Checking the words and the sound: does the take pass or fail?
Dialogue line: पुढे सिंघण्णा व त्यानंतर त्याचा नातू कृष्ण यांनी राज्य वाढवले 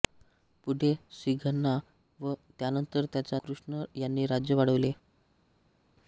fail